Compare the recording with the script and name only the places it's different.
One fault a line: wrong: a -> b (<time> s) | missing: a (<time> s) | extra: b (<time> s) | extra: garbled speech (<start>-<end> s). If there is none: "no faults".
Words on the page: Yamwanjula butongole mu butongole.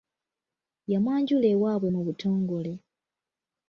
wrong: butongole -> ewaabwe (1.5 s)